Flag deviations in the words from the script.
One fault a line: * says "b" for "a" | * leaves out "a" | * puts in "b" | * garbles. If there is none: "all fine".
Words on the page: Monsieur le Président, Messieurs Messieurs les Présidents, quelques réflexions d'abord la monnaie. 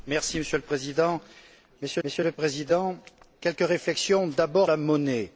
all fine